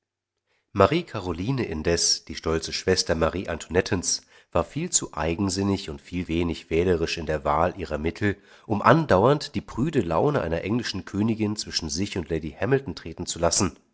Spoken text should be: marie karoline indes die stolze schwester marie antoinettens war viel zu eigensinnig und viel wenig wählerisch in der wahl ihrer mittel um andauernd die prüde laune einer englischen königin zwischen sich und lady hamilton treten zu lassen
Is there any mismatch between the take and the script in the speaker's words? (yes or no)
no